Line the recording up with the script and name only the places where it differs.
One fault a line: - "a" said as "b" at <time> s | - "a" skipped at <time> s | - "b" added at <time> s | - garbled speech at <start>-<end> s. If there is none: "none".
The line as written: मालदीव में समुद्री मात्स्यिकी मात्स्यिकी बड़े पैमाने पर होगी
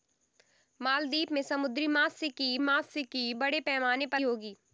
none